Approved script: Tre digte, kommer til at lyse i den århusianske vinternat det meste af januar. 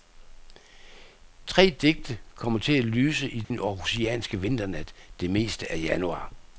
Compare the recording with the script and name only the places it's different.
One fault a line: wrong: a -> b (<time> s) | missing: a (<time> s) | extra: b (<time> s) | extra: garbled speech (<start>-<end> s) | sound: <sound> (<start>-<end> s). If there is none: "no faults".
sound: dropout (3.4-3.5 s)